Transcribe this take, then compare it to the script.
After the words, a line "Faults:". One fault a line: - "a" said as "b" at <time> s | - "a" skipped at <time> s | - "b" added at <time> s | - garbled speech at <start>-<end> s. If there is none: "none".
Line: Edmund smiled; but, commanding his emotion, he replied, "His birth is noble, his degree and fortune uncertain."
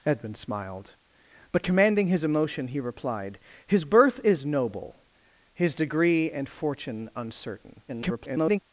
Edmund smiled; but, commanding his emotion, he replied, "His birth is noble, his degree and fortune uncertain." [garbled]
Faults:
- garbled speech at 7.9-8.6 s